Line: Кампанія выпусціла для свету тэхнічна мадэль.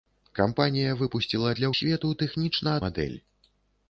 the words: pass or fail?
pass